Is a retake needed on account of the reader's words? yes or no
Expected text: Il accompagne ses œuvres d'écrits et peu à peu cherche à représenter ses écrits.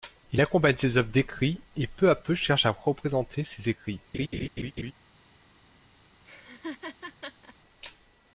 no